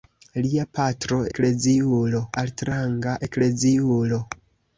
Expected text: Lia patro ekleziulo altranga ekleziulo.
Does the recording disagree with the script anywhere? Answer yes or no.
no